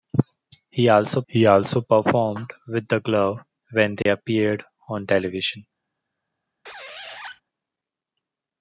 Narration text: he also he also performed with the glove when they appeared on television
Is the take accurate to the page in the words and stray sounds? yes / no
no